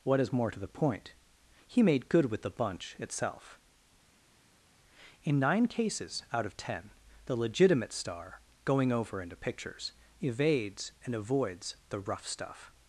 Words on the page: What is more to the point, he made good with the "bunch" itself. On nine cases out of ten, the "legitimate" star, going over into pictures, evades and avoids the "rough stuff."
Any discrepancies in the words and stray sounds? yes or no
yes